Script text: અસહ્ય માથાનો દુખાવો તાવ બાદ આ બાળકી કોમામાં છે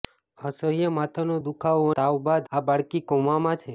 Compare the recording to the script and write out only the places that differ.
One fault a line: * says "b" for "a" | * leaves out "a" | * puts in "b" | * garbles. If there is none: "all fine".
all fine